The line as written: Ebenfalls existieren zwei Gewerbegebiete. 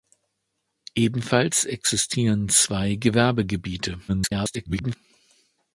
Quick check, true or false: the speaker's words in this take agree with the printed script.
false